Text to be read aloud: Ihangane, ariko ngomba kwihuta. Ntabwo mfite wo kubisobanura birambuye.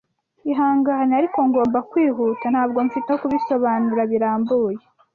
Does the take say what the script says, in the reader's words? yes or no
yes